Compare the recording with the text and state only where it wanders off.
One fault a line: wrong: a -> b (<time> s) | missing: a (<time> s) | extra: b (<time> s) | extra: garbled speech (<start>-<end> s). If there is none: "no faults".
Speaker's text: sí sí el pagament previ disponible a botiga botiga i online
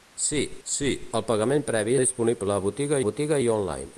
no faults